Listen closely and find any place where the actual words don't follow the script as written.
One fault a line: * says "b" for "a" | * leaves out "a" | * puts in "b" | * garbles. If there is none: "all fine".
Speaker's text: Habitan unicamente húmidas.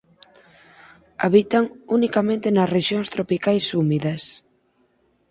* puts in "nas rexións tropicais"